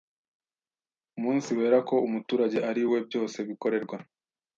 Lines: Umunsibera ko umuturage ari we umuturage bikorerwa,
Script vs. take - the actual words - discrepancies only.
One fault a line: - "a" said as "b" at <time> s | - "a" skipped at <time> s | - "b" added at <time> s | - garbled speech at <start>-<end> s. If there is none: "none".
- "umuturage" said as "byose" at 3.1 s